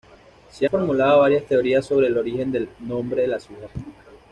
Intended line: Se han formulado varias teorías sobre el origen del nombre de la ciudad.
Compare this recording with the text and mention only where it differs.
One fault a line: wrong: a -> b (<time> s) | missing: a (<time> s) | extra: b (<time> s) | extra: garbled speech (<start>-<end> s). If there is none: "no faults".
missing: han (0.7 s)